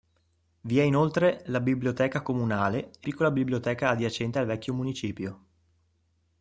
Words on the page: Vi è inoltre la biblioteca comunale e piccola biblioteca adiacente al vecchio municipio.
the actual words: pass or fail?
pass